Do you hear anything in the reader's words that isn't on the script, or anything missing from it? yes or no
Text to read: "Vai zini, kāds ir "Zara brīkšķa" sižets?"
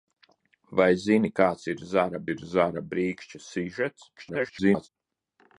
yes